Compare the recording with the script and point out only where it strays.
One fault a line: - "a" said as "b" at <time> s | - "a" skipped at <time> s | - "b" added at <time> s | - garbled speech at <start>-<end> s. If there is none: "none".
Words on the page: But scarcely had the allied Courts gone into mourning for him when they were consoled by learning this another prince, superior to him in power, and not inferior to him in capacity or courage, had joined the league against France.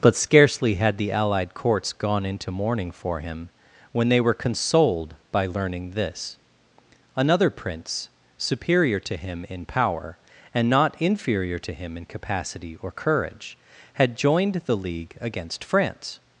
none